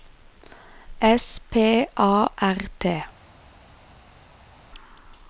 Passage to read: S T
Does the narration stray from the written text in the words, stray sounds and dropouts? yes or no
yes